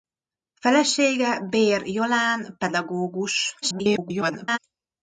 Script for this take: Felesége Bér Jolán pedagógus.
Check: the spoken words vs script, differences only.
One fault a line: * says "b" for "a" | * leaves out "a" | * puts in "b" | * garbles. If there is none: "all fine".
* garbles